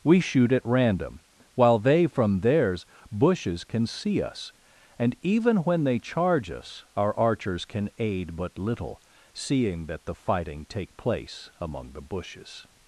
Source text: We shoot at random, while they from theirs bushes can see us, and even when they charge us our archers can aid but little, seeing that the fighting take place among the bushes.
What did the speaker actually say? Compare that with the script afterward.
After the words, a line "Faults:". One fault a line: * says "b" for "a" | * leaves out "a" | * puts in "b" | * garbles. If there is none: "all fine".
We shoot at random, while they from theirs bushes can see us, and even when they charge us our archers can aid but little, seeing that the fighting take place among the bushes.
Faults:
all fine